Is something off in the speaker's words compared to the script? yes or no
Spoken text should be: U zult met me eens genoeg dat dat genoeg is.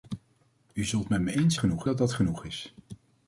no